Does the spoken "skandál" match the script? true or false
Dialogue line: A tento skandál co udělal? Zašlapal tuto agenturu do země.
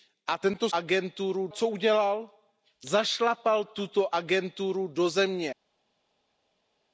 false